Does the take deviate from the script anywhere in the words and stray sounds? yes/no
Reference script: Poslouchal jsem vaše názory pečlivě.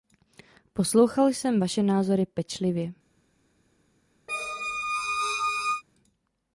yes